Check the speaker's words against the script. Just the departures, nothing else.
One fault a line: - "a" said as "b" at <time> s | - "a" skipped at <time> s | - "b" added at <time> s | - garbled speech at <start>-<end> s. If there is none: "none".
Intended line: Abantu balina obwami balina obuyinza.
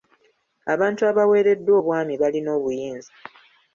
- "balina" said as "abaweereddwa" at 1.1 s